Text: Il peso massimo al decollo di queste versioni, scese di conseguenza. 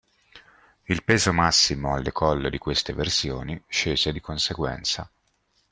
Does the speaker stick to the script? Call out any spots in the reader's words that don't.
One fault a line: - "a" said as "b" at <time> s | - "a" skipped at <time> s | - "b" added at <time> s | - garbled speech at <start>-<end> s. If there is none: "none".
none